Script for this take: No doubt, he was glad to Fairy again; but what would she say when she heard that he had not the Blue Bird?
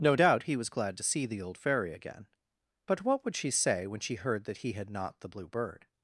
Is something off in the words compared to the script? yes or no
yes